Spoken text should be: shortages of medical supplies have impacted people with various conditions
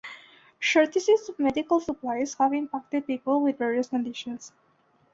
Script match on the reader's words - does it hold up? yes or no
yes